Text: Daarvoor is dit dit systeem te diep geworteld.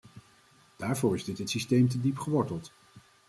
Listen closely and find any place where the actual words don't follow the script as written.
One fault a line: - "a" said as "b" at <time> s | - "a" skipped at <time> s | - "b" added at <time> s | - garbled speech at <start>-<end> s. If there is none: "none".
none